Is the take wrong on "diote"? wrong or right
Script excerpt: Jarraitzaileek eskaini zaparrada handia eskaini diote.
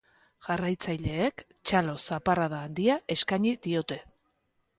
right